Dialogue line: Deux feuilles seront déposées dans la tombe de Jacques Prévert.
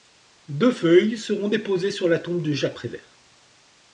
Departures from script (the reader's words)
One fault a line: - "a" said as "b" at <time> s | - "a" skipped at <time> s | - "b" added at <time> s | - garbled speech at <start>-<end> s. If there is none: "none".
- "dans" said as "sur" at 1.9 s